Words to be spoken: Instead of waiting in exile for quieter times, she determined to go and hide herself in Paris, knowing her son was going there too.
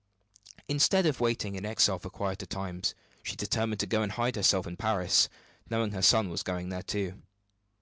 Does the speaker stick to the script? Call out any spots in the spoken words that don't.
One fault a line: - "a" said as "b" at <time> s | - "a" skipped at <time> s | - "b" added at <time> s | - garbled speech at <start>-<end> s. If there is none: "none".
none